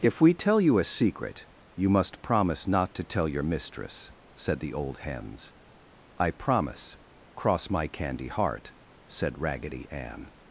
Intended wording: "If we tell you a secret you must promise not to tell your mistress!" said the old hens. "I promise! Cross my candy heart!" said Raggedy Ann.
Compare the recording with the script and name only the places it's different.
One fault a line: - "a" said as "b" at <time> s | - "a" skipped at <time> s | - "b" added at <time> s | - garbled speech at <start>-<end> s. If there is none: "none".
none